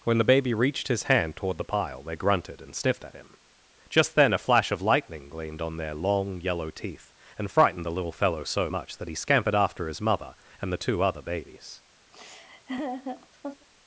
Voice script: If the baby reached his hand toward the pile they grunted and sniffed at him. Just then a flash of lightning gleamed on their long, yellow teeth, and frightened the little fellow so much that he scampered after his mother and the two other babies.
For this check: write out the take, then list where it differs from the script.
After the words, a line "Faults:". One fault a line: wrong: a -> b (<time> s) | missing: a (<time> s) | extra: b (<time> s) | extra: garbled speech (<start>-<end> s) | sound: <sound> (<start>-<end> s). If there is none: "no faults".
When the baby reached his hand toward the pile they grunted and sniffed at him. Just then a flash of lightning gleamed on their long, yellow teeth, and frightened the little fellow so much that he scampered after his mother and the two other babies.
Faults:
wrong: If -> When (0.0 s)
sound: laugh (12.1-13.7 s)